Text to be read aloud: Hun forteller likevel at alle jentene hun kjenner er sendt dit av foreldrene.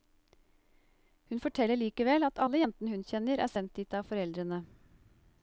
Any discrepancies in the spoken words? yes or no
no